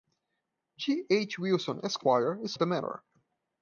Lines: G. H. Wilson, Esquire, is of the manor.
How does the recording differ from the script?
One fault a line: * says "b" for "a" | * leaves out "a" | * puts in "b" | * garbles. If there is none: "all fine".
all fine